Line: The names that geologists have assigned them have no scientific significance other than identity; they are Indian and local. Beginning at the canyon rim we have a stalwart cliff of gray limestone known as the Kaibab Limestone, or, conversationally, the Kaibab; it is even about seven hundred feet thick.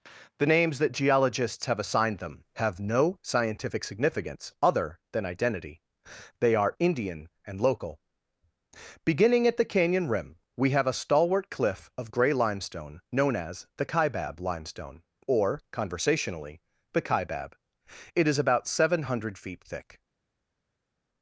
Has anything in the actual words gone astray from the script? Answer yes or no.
yes